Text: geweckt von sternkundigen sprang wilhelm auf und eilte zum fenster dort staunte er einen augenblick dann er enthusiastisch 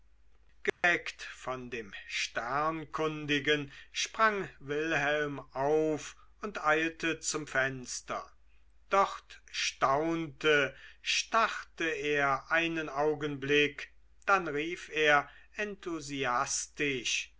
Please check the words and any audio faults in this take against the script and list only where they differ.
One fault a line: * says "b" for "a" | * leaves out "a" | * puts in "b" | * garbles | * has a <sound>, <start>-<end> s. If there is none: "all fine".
* has a dropout, 0.7-0.8 s
* puts in "dem"
* puts in "starrte"
* puts in "rief"